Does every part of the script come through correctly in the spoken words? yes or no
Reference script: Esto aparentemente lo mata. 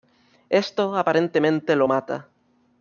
yes